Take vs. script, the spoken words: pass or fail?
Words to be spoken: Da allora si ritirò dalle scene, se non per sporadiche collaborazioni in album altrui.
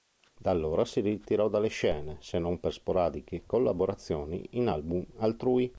pass